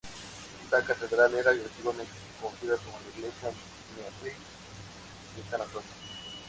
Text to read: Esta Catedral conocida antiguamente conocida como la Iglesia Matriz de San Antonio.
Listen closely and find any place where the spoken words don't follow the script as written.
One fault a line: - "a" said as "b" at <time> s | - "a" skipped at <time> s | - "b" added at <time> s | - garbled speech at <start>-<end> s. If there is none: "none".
- "conocida" said as "era" at 1.4 s